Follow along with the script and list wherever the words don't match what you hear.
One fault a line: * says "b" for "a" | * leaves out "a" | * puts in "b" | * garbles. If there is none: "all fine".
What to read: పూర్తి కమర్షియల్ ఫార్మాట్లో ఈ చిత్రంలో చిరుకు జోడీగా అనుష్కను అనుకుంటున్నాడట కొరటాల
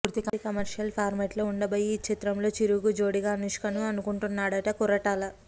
* puts in "ఉండబోయే"